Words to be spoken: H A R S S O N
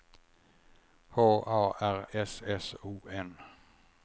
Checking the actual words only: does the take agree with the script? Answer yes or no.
yes